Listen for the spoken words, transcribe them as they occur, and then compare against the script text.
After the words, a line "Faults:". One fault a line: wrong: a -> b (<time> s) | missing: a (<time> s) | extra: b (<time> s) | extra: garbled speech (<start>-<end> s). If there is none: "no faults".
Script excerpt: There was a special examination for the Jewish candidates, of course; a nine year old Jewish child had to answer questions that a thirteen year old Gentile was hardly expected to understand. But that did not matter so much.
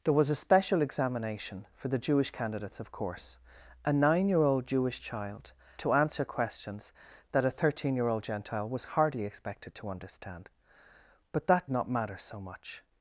There was a special examination for the Jewish candidates, of course; a nine year old Jewish child to answer questions that a thirteen year old Gentile was hardly expected to understand. But that not matter so much.
Faults:
missing: had (5.5 s)
missing: did (11.7 s)